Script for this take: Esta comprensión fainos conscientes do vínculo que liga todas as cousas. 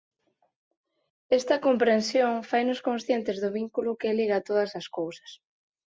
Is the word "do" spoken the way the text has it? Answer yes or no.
yes